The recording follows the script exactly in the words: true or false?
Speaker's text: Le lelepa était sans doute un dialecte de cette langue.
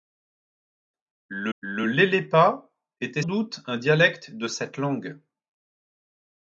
false